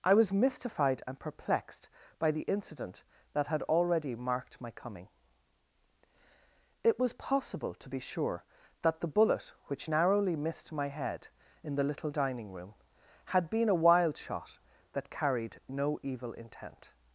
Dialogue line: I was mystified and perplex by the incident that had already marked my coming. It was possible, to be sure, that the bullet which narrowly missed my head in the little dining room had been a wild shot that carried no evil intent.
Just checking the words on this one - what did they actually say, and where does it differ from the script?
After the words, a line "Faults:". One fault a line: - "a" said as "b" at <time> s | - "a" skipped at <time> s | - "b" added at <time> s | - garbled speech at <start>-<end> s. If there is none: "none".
I was mystified and perplexed by the incident that had already marked my coming. It was possible, to be sure, that the bullet which narrowly missed my head in the little dining room had been a wild shot that carried no evil intent.
Faults:
- "perplex" said as "perplexed" at 1.2 s